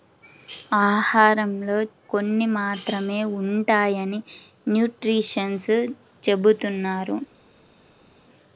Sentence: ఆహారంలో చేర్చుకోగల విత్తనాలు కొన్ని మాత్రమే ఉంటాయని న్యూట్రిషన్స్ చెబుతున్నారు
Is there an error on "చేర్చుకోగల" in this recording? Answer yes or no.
yes